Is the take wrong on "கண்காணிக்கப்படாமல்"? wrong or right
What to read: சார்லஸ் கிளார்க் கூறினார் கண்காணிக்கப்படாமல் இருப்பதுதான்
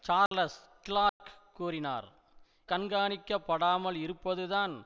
right